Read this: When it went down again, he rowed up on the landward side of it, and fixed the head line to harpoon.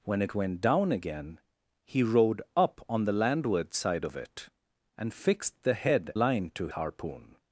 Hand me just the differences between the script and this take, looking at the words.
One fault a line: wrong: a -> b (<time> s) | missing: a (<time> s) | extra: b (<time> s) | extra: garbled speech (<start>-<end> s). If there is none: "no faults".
no faults